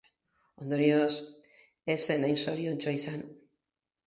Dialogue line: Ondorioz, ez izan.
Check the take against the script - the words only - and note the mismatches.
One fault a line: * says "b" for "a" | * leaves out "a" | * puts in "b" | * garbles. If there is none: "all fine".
* puts in "zen hain zoriontsua"